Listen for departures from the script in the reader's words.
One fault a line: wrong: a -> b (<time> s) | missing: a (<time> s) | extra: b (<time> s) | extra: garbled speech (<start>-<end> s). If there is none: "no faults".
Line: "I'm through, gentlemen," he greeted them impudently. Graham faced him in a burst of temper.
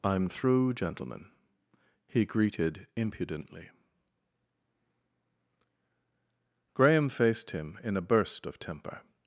missing: them (2.9 s)